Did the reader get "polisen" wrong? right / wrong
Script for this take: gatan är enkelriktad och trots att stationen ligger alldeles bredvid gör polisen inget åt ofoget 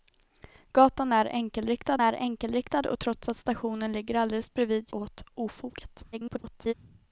wrong